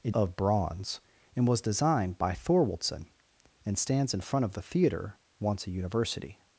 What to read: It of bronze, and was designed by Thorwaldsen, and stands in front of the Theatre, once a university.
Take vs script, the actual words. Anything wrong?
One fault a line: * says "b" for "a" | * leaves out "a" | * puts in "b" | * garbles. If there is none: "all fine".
all fine